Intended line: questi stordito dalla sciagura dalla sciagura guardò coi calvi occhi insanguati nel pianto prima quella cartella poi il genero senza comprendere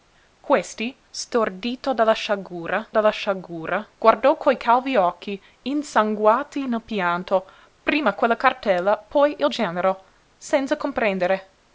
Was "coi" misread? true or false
false